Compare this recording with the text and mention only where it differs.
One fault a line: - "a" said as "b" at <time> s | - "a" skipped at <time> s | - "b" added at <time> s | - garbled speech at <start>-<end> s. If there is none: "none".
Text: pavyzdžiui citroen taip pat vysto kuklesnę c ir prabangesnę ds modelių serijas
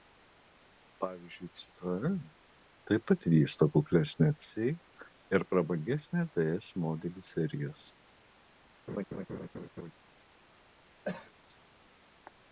none